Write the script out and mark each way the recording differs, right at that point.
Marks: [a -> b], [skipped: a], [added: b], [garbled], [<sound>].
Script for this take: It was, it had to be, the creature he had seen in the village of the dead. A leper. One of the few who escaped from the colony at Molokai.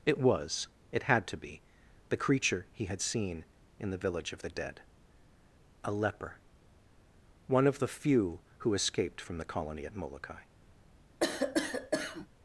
It was, it had to be, the creature he had seen in the village of the dead. A leper. One of the few who escaped from the colony at Molokai. [cough]